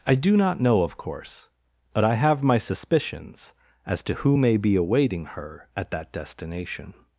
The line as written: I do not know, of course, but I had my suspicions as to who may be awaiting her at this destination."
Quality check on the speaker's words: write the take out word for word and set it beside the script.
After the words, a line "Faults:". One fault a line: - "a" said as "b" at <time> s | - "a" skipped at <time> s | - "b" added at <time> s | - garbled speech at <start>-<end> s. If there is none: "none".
I do not know, of course, but I have my suspicions as to who may be awaiting her at that destination."
Faults:
- "had" said as "have" at 2.1 s
- "this" said as "that" at 5.9 s